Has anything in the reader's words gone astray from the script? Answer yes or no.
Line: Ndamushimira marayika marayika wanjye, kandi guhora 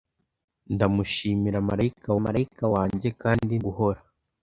no